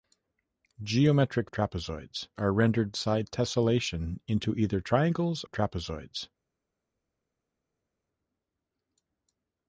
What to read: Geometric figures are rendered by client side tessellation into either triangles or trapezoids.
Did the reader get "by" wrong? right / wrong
wrong